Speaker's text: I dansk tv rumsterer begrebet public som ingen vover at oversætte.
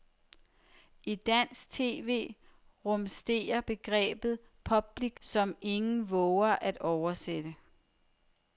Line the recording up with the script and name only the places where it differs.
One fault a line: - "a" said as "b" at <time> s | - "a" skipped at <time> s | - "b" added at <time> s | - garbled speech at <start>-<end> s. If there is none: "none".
none